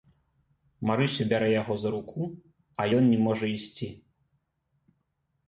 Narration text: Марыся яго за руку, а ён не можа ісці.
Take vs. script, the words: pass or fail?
fail